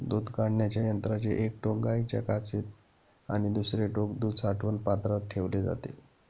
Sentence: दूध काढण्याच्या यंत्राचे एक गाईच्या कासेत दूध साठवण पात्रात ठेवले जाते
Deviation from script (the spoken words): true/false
true